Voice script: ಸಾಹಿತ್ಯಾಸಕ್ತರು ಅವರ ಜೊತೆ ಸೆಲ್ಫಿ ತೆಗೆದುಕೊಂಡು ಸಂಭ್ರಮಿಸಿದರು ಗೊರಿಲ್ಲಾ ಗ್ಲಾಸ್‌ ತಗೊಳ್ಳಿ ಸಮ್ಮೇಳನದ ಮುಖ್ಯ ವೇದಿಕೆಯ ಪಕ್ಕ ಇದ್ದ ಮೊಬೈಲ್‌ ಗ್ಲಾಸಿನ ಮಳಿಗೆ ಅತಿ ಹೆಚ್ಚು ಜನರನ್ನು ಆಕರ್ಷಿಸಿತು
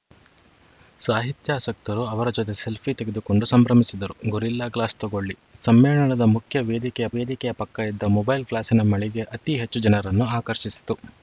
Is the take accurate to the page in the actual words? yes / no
no